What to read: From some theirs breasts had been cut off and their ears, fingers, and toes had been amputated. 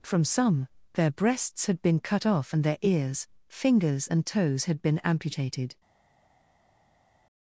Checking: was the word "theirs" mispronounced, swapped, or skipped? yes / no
yes